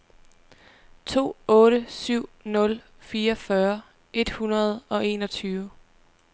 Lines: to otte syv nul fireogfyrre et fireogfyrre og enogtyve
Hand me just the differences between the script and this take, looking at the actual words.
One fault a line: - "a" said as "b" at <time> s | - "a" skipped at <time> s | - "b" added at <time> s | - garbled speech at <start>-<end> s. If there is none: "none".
- "fireogfyrre" said as "hundrede" at 4.3 s